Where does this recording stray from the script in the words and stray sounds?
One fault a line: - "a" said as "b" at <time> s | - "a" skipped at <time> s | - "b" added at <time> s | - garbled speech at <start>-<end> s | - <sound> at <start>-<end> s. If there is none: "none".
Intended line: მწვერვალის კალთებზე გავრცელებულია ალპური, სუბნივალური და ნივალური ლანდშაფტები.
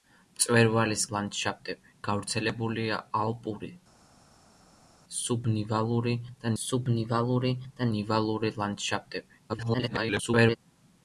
- "კალთებზე" said as "ლანდშაფტები" at 1.1 s
- "სუბნივალური და" added at 6.6 s
- garbled speech at 9.5-10.6 s